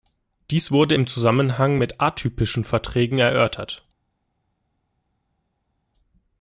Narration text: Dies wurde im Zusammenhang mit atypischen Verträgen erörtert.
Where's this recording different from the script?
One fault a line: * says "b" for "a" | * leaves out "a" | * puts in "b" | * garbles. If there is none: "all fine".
all fine